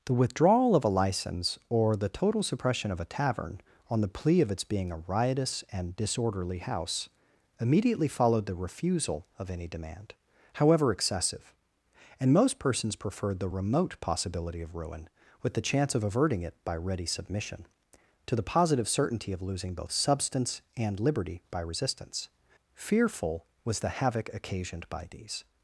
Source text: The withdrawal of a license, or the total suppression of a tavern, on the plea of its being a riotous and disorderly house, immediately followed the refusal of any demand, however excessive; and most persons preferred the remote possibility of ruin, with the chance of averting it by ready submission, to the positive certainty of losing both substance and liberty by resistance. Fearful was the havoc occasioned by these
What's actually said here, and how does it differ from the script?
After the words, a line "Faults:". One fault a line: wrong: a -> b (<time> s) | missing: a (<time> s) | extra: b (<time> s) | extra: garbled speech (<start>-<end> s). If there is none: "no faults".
The withdrawal of a license, or the total suppression of a tavern, on the plea of its being a riotous and disorderly house, immediately followed the refusal of any demand, however excessive; and most persons preferred the remote possibility of ruin, with the chance of averting it by ready submission, to the positive certainty of losing both substance and liberty by resistance. Fearful was the havoc occasioned by these
Faults:
no faults